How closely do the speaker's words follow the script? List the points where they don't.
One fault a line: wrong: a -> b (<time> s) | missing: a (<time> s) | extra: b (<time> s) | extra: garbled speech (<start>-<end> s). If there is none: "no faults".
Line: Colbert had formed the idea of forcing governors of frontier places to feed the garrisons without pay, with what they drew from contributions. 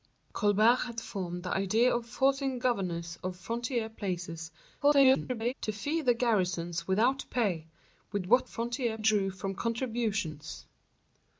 extra: garbled speech (4.8-5.5 s)
wrong: they -> frontier (8.4 s)